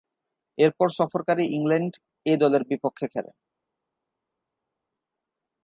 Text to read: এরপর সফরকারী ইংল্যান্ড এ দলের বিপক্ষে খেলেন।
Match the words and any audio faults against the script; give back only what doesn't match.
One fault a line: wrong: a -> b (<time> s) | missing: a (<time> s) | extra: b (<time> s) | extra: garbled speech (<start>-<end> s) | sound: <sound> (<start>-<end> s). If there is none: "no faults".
no faults